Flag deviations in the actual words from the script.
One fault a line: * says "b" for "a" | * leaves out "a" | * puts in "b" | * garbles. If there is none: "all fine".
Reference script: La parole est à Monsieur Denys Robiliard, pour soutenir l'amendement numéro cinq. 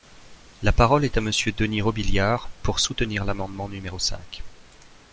all fine